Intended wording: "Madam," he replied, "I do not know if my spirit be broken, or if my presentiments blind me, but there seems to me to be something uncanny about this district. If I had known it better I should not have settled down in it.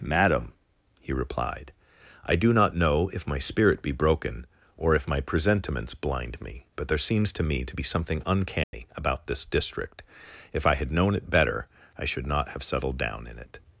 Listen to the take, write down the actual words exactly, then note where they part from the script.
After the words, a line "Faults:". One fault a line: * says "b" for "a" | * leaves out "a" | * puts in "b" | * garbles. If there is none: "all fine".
"Madam," he replied, "I do not know if my spirit be broken, or if my presentiments blind me, but there seems to me to be something uncanny about this district. If I had known it better I should not have settled down in it.
Faults:
all fine